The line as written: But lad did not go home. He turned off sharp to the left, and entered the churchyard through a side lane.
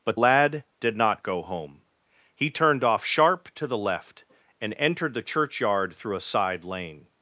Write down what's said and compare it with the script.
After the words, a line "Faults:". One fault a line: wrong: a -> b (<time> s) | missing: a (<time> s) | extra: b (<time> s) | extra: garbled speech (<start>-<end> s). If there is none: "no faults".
But lad did not go home. He turned off sharp to the left, and entered the churchyard through a side lane.
Faults:
no faults